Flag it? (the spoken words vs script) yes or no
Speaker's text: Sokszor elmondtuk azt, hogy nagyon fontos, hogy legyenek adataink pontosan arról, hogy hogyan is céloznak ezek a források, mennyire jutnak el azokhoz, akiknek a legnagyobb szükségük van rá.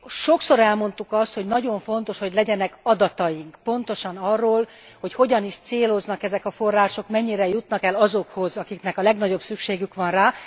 no